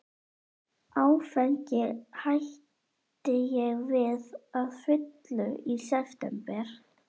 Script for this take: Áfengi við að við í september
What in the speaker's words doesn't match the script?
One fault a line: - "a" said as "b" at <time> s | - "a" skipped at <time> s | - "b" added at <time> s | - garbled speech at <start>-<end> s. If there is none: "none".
- "hætti ég" added at 2.2 s
- "við" said as "fullu" at 4.8 s